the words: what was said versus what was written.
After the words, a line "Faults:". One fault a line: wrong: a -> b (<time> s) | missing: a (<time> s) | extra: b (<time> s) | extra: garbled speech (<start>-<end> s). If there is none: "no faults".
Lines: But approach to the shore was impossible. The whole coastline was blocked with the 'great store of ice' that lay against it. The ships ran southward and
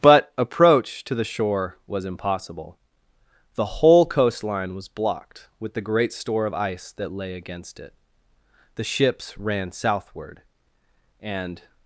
But approach to the shore was impossible. The whole coastline was blocked with the 'great store of ice' that lay against it. The ships ran southward and
Faults:
no faults